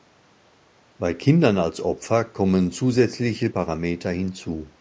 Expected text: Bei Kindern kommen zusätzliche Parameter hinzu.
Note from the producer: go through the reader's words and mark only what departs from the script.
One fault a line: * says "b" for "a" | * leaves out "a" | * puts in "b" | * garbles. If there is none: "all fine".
* puts in "als Opfer"